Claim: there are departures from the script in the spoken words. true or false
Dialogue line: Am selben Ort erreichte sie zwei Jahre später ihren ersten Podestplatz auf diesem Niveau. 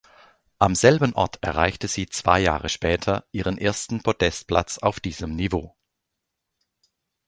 false